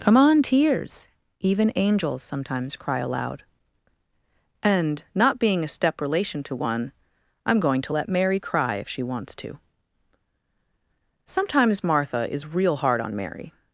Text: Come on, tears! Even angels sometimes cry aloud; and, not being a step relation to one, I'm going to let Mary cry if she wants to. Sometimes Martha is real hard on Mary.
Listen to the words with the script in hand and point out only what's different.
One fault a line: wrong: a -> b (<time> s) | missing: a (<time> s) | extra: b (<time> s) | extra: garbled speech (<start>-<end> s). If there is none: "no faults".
no faults